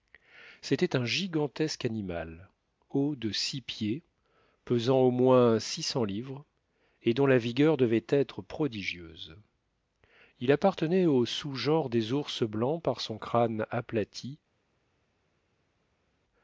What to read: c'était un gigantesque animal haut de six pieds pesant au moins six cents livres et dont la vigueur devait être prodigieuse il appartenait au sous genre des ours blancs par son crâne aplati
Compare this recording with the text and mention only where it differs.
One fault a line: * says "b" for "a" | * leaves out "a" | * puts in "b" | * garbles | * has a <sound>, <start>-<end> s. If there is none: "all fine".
all fine